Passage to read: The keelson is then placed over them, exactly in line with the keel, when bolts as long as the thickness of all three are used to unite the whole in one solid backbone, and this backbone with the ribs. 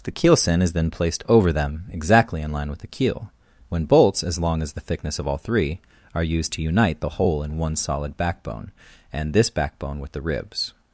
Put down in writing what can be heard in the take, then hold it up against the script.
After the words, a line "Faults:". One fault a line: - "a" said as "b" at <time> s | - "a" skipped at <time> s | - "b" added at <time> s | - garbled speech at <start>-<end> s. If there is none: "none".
The keelson is then placed over them, exactly in line with the keel, when bolts as long as the thickness of all three are used to unite the whole in one solid backbone, and this backbone with the ribs.
Faults:
none